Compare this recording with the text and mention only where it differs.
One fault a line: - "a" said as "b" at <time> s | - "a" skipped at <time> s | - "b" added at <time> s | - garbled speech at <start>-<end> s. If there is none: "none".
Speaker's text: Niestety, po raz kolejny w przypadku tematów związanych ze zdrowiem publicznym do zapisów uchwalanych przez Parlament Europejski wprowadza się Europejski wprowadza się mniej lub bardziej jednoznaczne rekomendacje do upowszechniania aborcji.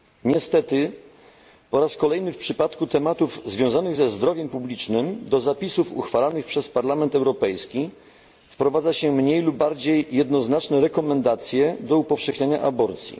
- "Europejski wprowadza się" skipped at 9.1 s